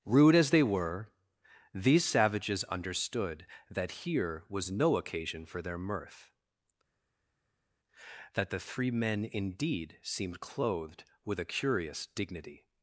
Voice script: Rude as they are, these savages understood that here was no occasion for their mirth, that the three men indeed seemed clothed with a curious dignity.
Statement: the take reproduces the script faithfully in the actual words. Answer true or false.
false